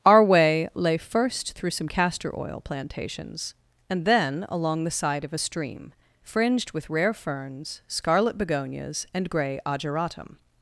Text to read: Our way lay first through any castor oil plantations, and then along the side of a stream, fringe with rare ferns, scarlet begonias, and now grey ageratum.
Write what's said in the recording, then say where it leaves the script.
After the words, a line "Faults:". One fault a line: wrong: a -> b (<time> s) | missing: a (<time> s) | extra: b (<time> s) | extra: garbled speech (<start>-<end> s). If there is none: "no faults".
Our way lay first through some castor oil plantations, and then along the side of a stream, fringed with rare ferns, scarlet begonias, and grey ageratum.
Faults:
wrong: any -> some (1.7 s)
wrong: fringe -> fringed (6.2 s)
missing: now (9.3 s)